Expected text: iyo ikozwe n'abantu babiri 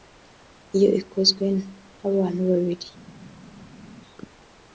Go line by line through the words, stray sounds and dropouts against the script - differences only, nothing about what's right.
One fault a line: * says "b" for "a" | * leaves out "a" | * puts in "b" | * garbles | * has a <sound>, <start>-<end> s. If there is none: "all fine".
all fine